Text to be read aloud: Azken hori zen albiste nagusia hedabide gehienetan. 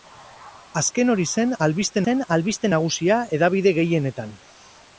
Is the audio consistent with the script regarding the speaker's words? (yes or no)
no